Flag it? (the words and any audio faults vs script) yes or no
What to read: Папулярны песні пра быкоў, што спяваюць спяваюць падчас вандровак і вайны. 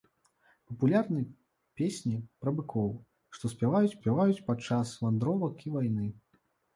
no